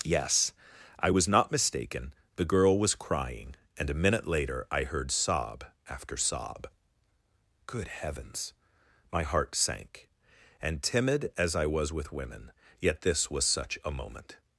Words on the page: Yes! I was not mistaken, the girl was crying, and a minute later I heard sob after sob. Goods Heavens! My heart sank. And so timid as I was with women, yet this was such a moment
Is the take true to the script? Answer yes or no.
no